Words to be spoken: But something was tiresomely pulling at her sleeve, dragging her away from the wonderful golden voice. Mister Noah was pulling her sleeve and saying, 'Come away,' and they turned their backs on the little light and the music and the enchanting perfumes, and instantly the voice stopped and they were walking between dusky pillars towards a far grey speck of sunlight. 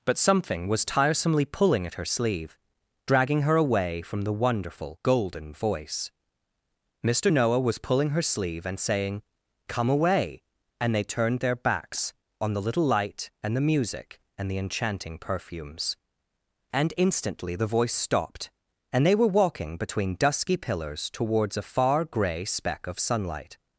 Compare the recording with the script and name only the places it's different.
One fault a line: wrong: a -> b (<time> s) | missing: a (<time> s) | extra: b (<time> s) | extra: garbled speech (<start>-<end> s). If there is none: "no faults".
no faults